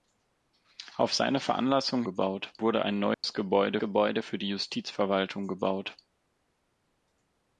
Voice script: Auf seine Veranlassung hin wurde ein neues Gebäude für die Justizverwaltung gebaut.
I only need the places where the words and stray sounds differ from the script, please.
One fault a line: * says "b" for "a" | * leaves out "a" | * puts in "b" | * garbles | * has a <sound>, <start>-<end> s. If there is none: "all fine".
* says "gebaut" for "hin"
* has a dropout, 3.1-3.2 s
* puts in "Gebäude"